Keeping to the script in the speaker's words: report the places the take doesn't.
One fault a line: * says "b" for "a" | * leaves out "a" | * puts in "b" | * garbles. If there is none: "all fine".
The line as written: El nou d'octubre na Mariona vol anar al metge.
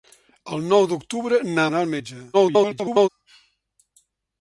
* leaves out "Mariona vol"
* garbles